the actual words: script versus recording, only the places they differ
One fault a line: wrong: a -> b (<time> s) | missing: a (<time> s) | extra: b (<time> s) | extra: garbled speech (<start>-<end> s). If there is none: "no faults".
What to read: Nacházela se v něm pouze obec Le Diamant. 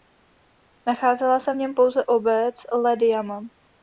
no faults